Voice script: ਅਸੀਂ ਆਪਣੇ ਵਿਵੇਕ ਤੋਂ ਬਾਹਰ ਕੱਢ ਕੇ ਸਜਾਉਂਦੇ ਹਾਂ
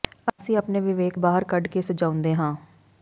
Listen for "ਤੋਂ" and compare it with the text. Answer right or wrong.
wrong